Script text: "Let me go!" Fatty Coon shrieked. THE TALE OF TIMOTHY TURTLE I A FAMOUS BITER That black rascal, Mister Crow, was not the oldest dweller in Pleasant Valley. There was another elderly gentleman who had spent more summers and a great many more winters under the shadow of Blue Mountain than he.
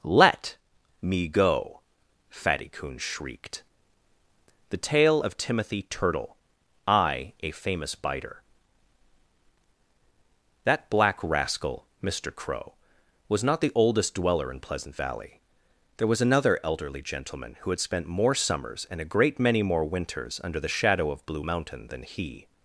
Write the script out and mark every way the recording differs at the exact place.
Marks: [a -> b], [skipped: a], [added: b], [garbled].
"Let me go!" Fatty Coon shrieked. THE TALE OF TIMOTHY TURTLE I A FAMOUS BITER That black rascal, Mister Crow, was not the oldest dweller in Pleasant Valley. There was another elderly gentleman who had spent more summers and a great many more winters under the shadow of Blue Mountain than he.